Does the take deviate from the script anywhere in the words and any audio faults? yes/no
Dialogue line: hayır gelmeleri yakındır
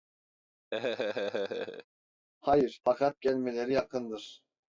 yes